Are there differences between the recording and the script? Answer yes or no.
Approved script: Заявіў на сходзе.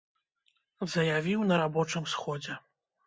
yes